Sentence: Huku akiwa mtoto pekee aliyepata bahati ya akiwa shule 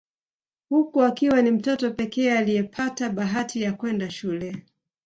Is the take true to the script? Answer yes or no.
no